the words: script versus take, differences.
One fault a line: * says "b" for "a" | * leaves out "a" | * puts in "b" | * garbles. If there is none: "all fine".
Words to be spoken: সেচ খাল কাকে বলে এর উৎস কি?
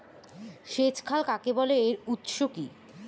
all fine